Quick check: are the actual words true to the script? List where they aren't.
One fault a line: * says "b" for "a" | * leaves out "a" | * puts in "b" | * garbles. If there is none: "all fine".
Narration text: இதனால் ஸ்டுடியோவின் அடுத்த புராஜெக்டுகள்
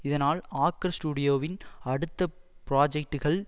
* puts in "ஆக்கர்"